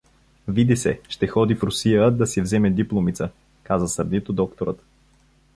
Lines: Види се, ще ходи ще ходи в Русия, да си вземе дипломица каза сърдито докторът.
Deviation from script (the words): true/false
true